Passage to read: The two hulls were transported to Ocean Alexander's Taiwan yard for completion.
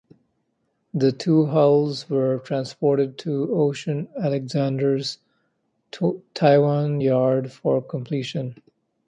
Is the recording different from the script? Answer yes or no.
no